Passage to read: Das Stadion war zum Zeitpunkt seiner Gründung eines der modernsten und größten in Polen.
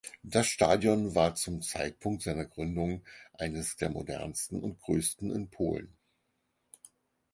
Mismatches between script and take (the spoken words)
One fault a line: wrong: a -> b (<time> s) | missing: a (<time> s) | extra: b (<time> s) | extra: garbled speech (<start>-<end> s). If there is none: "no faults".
no faults